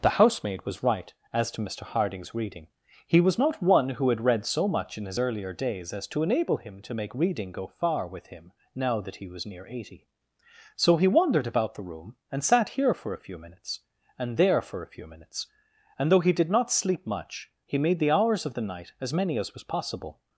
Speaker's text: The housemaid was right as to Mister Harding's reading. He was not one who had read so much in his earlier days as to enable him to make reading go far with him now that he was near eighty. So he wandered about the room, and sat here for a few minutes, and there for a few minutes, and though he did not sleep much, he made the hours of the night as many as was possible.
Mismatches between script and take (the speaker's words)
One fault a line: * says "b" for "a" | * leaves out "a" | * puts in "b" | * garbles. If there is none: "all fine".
all fine